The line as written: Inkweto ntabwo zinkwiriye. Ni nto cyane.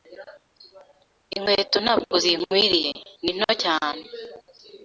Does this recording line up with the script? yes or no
yes